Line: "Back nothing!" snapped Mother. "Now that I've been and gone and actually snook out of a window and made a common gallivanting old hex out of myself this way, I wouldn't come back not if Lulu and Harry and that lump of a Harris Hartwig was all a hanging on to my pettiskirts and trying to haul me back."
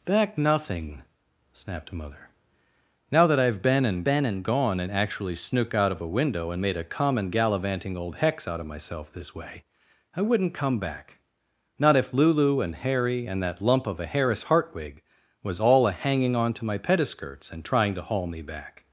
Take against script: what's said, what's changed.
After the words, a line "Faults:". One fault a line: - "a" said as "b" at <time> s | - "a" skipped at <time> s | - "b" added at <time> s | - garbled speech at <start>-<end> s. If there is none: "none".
"Back nothing!" snapped Mother. "Now that I've been and been and gone and actually snook out of a window and made a common gallivanting old hex out of myself this way, I wouldn't come back not if Lulu and Harry and that lump of a Harris Hartwig was all a hanging on to my pettiskirts and trying to haul me back."
Faults:
- "been and" added at 4.0 s